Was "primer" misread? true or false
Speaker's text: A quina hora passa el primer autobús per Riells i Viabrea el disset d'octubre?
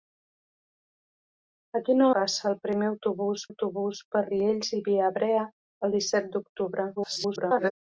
false